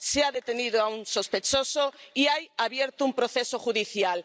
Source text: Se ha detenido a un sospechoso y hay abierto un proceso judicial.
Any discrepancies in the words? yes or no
no